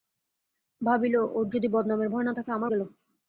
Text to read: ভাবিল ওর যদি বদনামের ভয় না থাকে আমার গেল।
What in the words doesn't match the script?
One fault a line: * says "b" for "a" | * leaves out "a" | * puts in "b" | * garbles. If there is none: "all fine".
all fine